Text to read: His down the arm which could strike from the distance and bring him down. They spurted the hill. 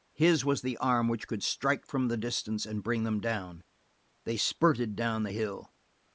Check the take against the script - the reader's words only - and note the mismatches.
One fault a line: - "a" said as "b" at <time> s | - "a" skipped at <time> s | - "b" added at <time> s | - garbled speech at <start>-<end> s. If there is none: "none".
- "down" said as "was" at 0.4 s
- "him" said as "them" at 3.0 s
- "down" added at 4.9 s